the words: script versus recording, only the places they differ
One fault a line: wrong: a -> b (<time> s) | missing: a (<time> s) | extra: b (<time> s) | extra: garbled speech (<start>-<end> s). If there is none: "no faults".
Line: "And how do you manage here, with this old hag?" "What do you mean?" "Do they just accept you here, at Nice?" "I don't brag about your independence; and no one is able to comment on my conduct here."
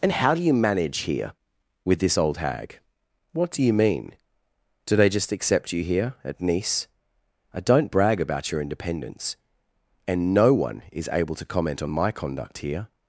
no faults